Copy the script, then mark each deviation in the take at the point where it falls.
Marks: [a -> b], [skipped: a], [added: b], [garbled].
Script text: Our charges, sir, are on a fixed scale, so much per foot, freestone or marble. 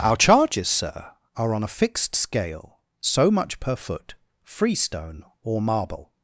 Our charges, sir, are on a fixed scale, so much per foot, freestone or marble.